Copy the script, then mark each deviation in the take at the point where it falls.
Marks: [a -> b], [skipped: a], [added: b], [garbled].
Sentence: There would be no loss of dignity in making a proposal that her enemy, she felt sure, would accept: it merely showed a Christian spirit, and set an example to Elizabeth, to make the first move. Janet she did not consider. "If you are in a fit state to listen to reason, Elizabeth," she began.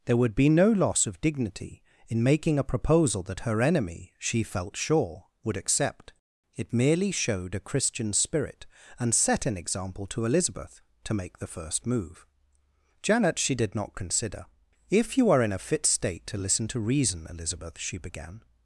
There would be no loss of dignity in making a proposal that her enemy, she felt sure, would accept: it merely showed a Christian spirit, and set an example to Elizabeth, to make the first move. Janet she did not consider. "If you are in a fit state to listen to reason, Elizabeth," she began.